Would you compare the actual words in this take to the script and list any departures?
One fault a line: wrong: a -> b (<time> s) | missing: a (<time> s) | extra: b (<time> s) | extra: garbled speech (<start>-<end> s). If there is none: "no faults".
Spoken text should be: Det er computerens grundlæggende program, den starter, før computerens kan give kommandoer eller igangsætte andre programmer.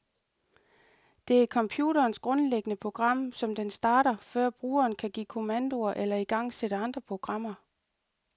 extra: som (3.3 s)
wrong: computerens -> brugeren (4.5 s)